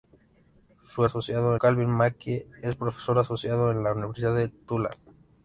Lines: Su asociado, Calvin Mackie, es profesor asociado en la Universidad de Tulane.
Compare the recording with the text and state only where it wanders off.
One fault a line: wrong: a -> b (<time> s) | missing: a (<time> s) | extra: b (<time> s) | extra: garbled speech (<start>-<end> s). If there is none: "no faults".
no faults